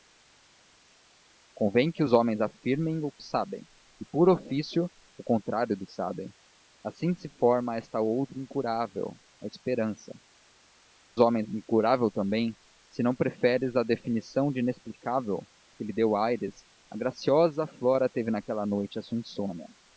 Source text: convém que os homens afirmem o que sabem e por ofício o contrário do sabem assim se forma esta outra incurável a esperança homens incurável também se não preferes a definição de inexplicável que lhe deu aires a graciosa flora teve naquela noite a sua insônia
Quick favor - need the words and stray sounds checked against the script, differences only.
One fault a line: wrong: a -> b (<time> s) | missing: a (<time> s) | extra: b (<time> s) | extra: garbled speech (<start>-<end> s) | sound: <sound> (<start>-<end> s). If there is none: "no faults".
no faults